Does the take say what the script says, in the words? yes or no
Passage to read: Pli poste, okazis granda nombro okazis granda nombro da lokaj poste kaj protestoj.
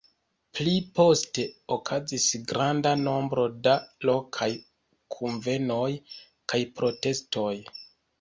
no